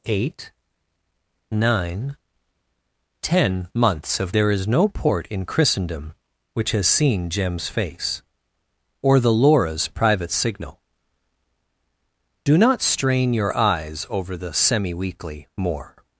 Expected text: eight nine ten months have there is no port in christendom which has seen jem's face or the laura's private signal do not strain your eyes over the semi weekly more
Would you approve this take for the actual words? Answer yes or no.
yes